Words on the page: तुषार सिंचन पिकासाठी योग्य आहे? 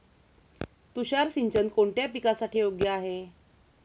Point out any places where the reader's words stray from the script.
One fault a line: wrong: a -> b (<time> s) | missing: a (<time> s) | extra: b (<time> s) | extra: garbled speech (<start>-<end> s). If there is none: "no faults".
extra: कोणत्या (1.7 s)